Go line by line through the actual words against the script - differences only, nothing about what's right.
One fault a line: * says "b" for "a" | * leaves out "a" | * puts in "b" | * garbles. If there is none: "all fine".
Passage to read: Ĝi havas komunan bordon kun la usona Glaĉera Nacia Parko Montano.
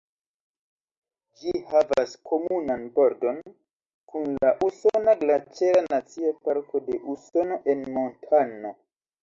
* puts in "de Usono en"